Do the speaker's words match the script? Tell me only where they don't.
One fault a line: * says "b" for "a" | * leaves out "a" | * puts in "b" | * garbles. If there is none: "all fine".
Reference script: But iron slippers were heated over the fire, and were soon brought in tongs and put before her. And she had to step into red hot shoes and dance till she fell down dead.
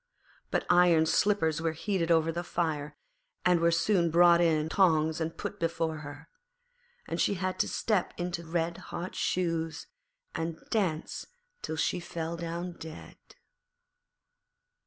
all fine